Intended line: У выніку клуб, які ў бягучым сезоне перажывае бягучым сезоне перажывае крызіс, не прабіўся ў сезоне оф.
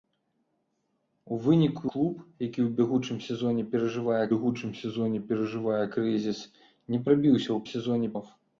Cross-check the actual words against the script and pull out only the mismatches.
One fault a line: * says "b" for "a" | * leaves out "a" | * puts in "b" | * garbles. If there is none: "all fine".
all fine